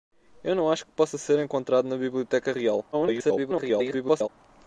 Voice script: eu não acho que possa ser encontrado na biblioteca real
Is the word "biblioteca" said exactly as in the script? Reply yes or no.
yes